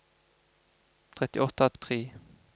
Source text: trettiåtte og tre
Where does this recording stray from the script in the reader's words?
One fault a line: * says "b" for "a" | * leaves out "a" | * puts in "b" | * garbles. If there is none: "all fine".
all fine